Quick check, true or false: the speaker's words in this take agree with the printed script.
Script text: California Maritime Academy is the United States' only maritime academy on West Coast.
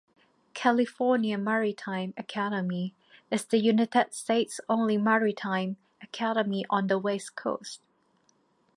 false